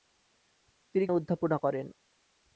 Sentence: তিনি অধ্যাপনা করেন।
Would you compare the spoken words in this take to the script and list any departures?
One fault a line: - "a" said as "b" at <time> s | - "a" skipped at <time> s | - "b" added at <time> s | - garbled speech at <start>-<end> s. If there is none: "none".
none